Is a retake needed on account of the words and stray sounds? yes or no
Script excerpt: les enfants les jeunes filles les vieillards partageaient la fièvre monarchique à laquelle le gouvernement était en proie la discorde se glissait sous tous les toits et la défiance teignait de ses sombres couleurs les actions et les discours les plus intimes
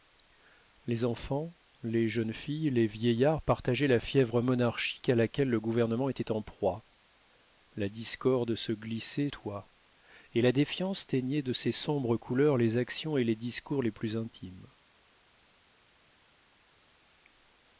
yes